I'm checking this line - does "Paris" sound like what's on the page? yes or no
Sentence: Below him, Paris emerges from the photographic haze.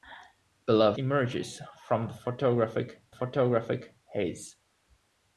no